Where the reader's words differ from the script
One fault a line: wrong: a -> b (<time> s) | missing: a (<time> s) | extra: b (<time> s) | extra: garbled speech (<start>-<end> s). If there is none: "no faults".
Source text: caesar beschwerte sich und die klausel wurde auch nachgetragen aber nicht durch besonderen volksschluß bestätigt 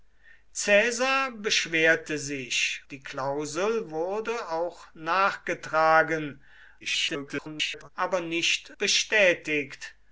missing: und (2.8 s)
extra: garbled speech (6.8-7.9 s)
missing: durch besonderen volksschluß (8.7 s)